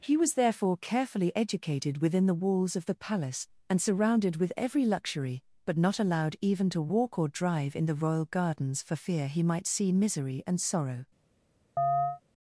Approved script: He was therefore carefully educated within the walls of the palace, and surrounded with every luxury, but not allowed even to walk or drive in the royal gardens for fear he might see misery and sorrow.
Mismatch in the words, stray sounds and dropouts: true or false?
true